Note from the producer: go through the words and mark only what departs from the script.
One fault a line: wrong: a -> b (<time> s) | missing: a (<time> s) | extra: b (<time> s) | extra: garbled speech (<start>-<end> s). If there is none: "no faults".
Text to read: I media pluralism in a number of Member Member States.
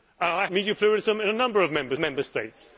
no faults